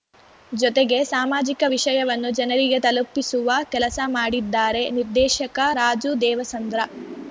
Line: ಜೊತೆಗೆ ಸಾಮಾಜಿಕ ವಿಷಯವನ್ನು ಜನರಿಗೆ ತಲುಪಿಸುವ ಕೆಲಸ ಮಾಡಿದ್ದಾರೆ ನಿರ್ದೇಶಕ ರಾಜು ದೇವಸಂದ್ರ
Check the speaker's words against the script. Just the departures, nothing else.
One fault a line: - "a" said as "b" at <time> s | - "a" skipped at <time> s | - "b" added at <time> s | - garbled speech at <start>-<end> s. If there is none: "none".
none